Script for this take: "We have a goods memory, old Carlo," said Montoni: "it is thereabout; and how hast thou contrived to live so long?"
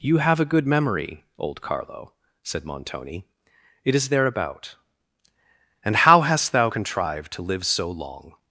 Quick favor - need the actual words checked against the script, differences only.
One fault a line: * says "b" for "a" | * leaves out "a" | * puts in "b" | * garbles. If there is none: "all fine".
* says "You" for "We"
* says "good" for "goods"